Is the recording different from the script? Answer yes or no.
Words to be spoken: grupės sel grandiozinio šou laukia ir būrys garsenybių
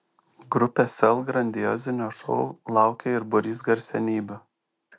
no